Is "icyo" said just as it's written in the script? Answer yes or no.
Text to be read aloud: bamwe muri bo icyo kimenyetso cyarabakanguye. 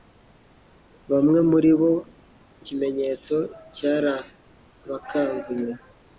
no